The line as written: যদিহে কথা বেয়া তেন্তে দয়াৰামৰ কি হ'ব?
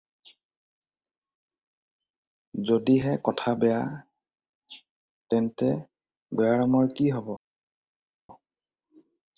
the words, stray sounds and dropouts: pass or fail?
pass